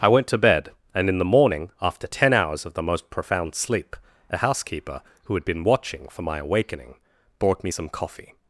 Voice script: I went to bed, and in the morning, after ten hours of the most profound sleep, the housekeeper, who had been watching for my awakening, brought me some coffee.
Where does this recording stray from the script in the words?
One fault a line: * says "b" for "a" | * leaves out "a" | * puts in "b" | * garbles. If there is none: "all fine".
* says "a" for "the"